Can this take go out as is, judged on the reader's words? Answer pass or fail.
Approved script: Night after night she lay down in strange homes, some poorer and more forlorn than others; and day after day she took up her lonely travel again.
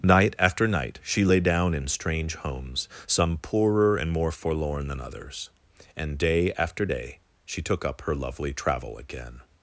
fail